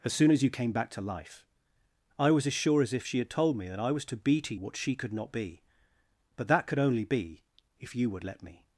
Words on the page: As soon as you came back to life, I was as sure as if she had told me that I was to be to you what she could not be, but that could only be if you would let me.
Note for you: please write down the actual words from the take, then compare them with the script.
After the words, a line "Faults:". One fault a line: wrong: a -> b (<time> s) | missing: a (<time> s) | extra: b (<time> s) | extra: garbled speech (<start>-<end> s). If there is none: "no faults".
As soon as you came back to life, I was as sure as if she had told me that I was to be to what she could not be, but that could only be if you would let me.
Faults:
missing: you (4.5 s)